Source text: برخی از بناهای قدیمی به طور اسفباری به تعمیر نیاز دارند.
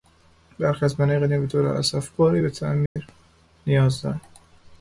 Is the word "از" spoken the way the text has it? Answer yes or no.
yes